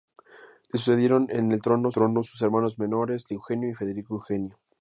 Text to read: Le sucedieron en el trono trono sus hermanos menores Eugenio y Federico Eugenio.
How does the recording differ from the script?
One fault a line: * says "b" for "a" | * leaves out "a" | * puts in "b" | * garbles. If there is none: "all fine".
all fine